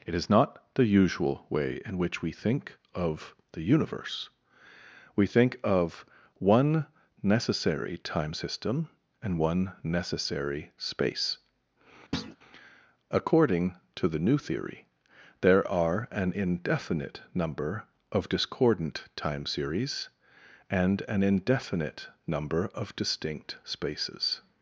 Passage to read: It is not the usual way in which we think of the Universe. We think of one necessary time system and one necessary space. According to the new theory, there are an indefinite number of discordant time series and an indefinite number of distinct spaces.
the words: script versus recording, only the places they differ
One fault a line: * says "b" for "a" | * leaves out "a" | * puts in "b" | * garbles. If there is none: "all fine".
all fine